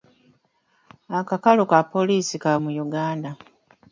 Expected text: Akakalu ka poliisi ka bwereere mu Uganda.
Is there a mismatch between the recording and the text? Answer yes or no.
yes